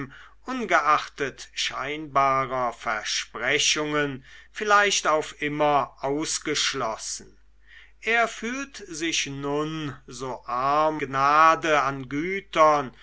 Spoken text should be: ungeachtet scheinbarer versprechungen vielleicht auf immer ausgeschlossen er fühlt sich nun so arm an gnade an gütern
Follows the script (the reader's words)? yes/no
no